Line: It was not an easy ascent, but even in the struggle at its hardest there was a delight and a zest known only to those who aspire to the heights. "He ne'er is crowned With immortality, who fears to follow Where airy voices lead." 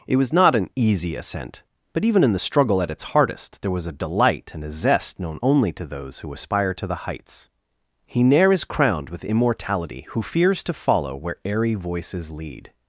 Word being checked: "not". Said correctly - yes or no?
yes